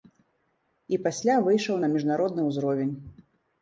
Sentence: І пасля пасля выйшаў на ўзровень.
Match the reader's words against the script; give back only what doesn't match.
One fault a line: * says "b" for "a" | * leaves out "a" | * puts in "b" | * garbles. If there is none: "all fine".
* leaves out "пасля"
* puts in "міжнародны"